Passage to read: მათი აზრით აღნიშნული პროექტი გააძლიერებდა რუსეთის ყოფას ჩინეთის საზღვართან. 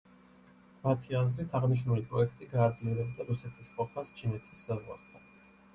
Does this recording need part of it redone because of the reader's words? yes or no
no